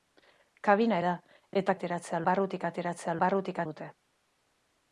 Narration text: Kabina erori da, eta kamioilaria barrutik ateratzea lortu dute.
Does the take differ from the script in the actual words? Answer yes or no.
yes